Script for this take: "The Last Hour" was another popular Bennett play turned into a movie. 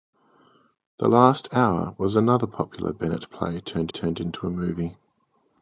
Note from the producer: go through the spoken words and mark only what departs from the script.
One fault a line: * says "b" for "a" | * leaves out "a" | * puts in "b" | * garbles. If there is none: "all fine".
* puts in "turned"